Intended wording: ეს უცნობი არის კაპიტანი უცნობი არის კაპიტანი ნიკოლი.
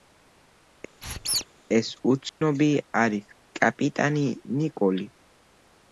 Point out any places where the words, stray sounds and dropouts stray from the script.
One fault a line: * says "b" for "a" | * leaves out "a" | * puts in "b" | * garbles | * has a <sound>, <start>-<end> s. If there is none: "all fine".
* has a squeak, 1.0-1.5 s
* has a dropout, 2.3-2.4 s
* leaves out "უცნობი არის კაპიტანი"